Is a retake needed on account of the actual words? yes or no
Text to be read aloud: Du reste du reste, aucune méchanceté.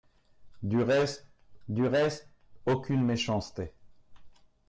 no